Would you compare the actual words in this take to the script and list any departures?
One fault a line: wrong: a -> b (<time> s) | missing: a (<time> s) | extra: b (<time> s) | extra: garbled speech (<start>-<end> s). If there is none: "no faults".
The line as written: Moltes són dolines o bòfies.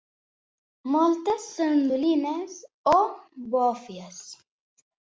no faults